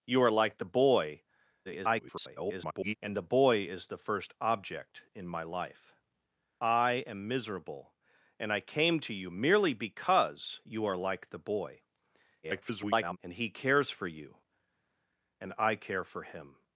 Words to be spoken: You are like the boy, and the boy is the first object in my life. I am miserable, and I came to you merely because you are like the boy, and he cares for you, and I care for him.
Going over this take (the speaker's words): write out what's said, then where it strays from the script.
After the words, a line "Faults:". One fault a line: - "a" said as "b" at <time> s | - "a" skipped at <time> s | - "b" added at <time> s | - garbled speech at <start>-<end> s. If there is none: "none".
You are like the boy, [garbled] and the boy is the first object in my life. I am miserable, and I came to you merely because you are like the boy, [garbled] and he cares for you, and I care for him.
Faults:
- garbled speech at 1.6-3.0 s
- garbled speech at 12.4-13.2 s